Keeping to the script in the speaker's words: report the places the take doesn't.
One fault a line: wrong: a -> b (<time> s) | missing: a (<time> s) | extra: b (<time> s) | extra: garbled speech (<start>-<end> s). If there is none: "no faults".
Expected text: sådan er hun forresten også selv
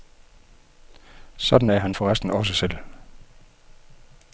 wrong: hun -> han (1.8 s)